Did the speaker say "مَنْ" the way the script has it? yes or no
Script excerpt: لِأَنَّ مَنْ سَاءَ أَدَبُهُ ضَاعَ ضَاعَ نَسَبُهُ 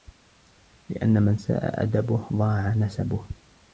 yes